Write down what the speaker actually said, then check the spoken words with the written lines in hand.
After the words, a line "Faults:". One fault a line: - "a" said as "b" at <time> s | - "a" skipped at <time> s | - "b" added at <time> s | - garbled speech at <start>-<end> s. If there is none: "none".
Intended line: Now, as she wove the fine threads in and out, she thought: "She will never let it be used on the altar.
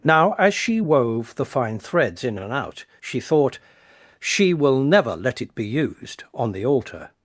Now, as she wove the fine threads in and out, she thought: "She will never let it be used on the altar.
Faults:
none